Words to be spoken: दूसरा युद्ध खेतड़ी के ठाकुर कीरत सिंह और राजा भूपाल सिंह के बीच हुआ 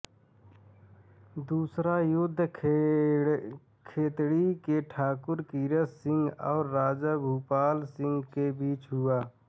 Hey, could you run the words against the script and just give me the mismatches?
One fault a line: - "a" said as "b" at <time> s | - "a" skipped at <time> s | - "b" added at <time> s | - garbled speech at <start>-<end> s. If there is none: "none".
none